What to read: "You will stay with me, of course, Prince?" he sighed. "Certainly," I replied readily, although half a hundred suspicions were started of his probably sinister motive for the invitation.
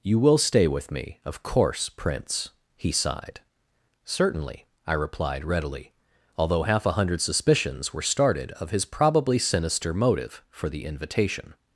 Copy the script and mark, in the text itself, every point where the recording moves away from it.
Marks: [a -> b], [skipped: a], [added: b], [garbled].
"You will stay with me, of course, Prince?" he sighed. "Certainly," I replied readily, although half a hundred suspicions were started of his probably sinister motive for the invitation.